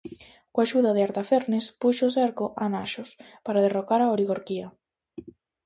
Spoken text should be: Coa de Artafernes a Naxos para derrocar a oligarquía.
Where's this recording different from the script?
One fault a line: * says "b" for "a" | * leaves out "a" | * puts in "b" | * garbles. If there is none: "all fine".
* puts in "axuda"
* puts in "puxo cerco"